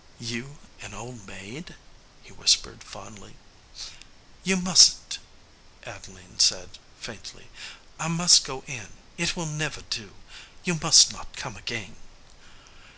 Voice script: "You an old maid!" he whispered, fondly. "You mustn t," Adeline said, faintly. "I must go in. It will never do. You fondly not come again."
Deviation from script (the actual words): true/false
true